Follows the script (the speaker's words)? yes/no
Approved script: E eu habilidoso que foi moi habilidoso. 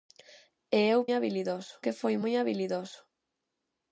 yes